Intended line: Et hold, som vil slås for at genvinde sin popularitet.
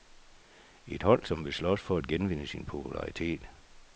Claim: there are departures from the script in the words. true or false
false